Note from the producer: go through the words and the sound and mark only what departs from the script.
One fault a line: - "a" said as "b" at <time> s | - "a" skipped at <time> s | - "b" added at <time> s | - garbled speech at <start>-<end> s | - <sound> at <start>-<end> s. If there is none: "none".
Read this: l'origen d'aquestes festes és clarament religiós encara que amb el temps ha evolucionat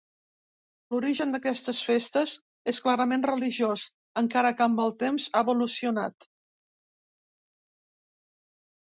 none